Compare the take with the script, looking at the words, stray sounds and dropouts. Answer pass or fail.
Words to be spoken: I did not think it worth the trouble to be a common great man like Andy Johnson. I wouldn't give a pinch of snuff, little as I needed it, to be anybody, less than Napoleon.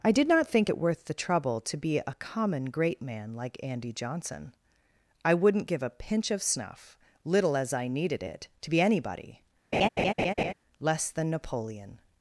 fail